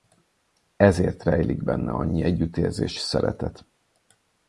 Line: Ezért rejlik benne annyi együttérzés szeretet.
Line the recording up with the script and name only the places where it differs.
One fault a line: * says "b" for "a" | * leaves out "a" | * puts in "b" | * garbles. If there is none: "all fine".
all fine